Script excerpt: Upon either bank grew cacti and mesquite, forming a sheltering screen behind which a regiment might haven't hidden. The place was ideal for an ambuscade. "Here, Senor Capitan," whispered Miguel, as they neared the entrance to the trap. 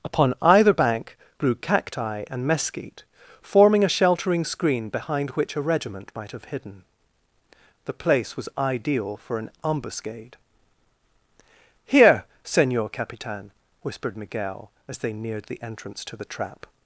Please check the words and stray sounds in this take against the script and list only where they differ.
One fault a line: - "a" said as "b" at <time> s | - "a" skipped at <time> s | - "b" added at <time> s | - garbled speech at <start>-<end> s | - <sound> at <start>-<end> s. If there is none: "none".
- "haven't" said as "have" at 6.3 s